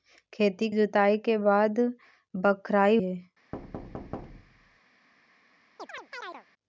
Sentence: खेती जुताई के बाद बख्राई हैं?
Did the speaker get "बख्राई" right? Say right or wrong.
right